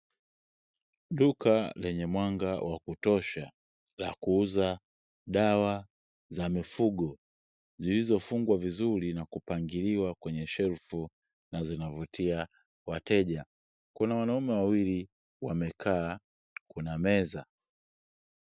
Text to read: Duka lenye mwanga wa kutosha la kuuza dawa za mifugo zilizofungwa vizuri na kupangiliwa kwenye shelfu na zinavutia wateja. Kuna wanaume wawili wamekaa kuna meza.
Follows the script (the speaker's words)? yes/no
yes